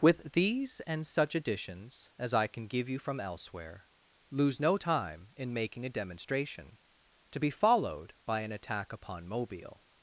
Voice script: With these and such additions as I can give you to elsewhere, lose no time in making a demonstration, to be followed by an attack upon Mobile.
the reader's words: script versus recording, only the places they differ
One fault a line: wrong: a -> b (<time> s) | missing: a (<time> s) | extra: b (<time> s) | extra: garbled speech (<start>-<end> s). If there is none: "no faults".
wrong: to -> from (3.0 s)